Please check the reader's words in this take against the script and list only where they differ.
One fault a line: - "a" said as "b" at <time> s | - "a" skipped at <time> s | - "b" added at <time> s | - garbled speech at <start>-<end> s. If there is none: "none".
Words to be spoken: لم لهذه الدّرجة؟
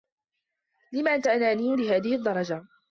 - "أنت أناني" added at 1.1 s